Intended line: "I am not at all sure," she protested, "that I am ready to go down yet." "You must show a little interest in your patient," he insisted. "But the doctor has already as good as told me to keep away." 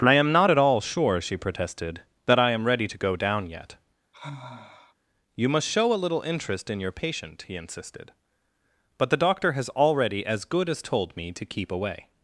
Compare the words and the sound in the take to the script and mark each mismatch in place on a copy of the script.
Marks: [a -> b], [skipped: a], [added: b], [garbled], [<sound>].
"I am not at all sure," she protested, "that I am ready to go down yet." [sigh] "You must show a little interest in your patient," he insisted. "But the doctor has already as good as told me to keep away."